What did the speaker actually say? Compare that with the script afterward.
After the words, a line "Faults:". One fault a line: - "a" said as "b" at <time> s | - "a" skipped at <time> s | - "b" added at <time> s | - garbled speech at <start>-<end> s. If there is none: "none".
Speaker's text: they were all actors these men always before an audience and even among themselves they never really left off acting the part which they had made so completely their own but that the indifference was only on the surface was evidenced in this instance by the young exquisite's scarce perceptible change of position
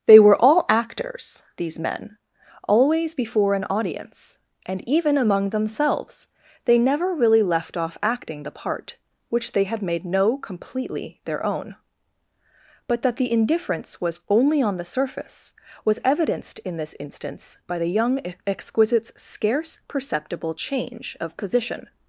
they were all actors these men always before an audience and even among themselves they never really left off acting the part which they had made no completely their own but that the indifference was only on the surface was evidenced in this instance by the young exquisite's scarce perceptible change of position
Faults:
- "so" said as "no" at 10.1 s